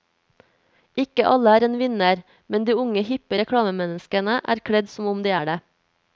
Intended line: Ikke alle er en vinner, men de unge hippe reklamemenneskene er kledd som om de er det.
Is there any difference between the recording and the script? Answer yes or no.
no